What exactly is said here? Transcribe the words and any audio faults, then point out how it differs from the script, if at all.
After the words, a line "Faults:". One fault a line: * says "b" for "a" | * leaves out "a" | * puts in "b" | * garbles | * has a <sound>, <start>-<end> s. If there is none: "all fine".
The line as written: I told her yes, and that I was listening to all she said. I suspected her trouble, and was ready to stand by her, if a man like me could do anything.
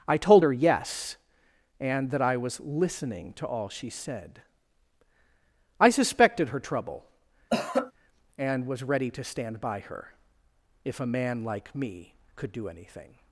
I told her yes, and that I was listening to all she said. I suspected her trouble, and was ready to stand by her, if a man like me could do anything.
Faults:
* has a cough, 7.5-7.9 s